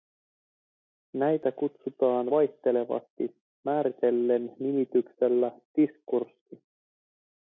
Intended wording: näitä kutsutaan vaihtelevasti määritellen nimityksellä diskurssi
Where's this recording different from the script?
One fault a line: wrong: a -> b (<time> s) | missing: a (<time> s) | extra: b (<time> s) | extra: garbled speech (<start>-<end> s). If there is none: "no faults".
no faults